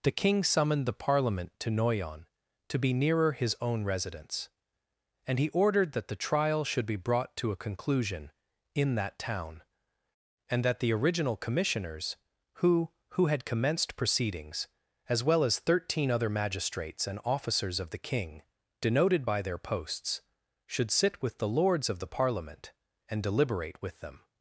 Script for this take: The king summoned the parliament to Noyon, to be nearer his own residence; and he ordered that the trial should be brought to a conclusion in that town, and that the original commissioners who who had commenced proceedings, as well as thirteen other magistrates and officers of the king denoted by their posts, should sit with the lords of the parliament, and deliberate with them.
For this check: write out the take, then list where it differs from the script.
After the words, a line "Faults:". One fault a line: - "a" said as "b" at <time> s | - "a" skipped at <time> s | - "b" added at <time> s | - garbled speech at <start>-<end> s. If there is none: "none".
The king summoned the parliament to Noyon, to be nearer his own residence; and he ordered that the trial should be brought to a conclusion in that town, and that the original commissioners who who had commenced proceedings, as well as thirteen other magistrates and officers of the king denoted by their posts, should sit with the lords of the parliament, and deliberate with them.
Faults:
none